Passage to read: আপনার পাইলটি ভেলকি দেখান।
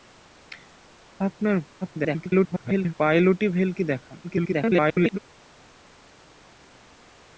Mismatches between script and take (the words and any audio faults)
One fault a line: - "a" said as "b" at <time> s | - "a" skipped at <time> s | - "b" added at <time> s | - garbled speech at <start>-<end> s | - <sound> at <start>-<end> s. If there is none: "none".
- garbled speech at 1.8-2.9 s
- garbled speech at 4.2-5.2 s